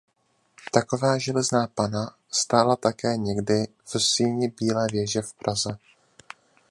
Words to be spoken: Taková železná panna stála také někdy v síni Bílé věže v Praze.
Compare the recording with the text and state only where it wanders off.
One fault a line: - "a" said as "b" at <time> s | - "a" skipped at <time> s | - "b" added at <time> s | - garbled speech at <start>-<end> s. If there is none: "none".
none